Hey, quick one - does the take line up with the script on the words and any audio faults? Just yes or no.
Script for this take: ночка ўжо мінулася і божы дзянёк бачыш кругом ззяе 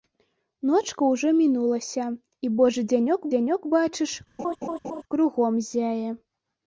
no